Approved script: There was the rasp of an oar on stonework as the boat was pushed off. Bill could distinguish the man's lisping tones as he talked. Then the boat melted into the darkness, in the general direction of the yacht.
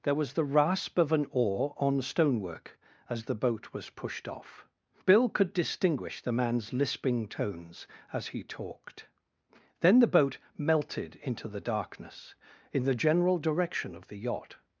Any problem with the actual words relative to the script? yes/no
no